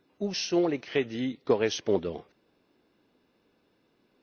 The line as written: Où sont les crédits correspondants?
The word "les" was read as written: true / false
true